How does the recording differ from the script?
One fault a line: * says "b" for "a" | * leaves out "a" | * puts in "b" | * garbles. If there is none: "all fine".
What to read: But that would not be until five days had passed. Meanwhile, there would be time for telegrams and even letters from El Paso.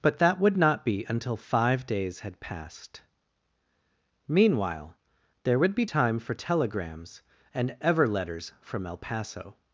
* says "ever" for "even"